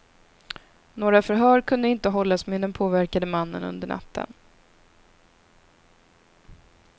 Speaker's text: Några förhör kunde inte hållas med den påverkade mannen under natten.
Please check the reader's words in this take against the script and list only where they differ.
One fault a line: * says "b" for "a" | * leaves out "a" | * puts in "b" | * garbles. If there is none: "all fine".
all fine